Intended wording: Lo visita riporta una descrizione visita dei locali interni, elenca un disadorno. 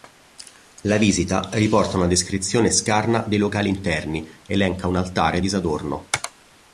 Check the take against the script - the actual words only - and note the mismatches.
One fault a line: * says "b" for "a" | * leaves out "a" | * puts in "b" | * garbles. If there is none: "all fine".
* says "La" for "Lo"
* says "scarna" for "visita"
* puts in "altare"